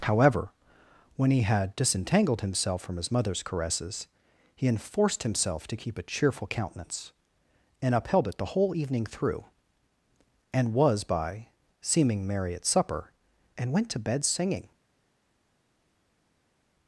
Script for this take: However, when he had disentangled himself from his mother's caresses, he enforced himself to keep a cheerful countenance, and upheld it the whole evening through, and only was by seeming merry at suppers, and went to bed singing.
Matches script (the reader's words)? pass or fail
fail